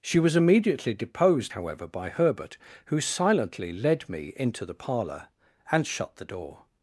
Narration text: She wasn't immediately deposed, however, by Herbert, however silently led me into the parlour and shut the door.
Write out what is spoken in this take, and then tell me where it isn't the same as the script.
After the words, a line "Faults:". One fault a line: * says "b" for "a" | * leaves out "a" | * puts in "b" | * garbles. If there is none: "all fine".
She was immediately deposed, however, by Herbert, who silently led me into the parlour and shut the door.
Faults:
* says "was" for "wasn't"
* says "who" for "however"